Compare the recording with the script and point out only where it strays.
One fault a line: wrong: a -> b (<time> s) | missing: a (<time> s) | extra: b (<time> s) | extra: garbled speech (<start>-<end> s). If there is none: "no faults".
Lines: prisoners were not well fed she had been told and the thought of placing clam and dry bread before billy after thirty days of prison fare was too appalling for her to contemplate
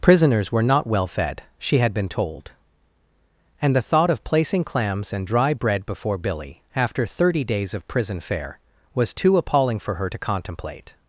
wrong: clam -> clams (4.6 s)